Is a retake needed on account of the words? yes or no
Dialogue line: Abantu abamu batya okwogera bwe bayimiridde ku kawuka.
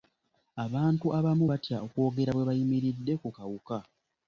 no